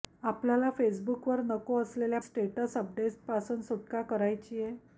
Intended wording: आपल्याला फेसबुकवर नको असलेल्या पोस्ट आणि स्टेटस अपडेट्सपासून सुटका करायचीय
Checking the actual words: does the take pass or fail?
fail